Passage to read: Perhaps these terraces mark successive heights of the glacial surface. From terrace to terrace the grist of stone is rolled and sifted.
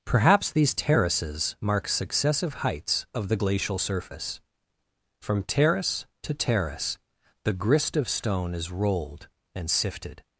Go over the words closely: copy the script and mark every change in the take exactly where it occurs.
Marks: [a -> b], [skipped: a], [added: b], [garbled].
Perhaps these terraces mark successive heights of the glacial surface. From terrace to terrace the grist of stone is rolled and sifted.